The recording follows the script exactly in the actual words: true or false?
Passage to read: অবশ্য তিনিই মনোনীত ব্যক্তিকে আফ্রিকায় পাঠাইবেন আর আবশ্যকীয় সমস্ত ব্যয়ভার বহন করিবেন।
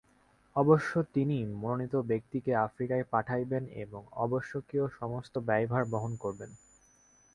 false